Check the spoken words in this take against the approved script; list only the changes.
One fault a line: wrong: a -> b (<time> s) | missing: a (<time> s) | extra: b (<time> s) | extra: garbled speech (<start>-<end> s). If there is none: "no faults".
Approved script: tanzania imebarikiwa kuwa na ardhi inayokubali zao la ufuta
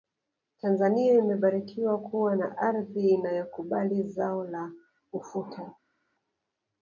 no faults